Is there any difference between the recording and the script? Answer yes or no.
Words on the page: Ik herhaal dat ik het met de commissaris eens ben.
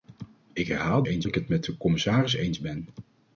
yes